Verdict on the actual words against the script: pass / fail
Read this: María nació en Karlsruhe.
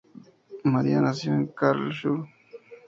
pass